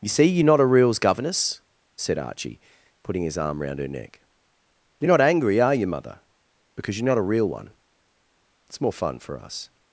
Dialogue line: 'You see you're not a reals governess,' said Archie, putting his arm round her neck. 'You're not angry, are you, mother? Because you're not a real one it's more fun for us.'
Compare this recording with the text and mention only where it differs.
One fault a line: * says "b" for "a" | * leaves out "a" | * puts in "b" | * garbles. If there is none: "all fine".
all fine